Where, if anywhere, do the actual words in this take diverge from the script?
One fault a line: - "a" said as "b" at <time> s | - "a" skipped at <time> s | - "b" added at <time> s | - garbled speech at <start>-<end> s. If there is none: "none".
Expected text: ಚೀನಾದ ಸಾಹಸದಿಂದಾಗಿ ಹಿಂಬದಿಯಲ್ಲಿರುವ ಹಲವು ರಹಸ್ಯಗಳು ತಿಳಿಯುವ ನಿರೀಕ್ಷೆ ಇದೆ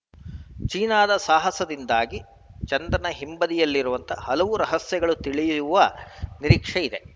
- "ಚಂದ್ರನ" added at 2.7 s